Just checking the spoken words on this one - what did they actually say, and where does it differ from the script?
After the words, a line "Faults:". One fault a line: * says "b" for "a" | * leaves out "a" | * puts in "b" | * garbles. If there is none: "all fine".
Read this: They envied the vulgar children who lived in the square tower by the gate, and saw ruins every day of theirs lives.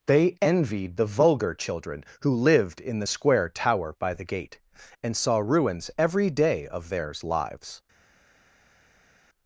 They envied the vulgar children who lived in the square tower by the gate, and saw ruins every day of theirs lives.
Faults:
all fine